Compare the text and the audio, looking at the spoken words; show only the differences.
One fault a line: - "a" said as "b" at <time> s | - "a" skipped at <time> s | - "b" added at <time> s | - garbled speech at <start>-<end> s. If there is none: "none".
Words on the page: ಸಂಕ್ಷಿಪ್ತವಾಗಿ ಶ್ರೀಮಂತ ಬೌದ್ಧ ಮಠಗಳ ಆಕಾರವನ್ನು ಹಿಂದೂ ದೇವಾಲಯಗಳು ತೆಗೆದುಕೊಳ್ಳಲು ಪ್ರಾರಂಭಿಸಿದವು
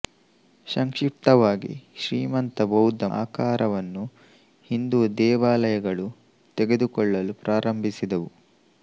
- "ಮಠಗಳ" skipped at 3.0 s